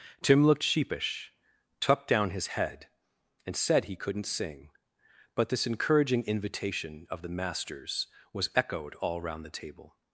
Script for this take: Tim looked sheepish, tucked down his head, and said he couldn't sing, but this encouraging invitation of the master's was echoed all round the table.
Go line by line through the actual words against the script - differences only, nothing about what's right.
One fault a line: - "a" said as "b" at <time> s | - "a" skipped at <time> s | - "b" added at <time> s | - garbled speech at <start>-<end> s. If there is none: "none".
none